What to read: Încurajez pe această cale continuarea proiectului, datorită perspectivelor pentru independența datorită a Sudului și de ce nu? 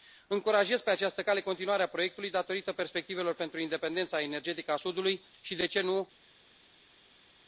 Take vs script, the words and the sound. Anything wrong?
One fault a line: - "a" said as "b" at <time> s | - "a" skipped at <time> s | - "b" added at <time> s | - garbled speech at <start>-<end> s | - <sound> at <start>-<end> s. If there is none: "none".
- "datorită" said as "energetică" at 4.2 s